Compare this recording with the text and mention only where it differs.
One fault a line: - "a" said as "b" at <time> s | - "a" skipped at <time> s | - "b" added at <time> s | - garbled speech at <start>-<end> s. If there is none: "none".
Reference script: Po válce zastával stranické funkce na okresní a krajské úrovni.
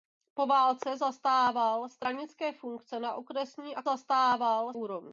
- "krajské" said as "zastával" at 3.8 s